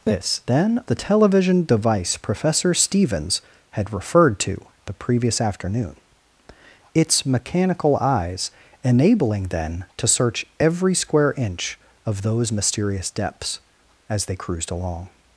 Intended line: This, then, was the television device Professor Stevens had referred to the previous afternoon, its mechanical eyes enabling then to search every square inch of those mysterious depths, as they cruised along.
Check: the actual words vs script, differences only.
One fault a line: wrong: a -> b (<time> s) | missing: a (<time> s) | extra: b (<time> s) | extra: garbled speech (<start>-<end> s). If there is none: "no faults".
missing: was (0.8 s)